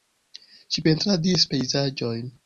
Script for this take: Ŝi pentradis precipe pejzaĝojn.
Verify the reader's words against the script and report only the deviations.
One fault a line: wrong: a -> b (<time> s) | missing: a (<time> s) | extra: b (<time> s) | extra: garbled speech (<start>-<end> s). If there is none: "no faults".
missing: precipe (1.5 s)